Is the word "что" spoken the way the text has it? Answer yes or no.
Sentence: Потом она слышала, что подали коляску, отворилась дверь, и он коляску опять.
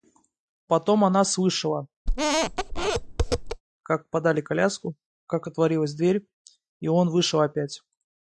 no